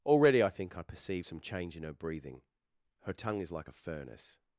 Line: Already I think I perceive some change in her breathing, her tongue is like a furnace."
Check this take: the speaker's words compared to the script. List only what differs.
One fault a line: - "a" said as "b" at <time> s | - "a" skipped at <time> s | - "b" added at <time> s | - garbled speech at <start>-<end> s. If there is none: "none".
none